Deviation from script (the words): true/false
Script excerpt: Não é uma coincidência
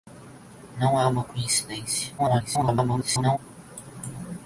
true